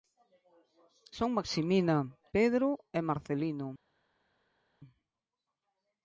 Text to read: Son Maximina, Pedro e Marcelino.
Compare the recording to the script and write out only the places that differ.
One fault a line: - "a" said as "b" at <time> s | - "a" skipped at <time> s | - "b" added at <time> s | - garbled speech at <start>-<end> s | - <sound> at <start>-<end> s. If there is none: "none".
none